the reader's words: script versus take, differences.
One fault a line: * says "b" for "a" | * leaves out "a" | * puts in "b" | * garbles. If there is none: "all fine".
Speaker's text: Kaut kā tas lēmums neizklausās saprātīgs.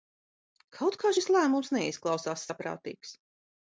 * says "šis" for "tas"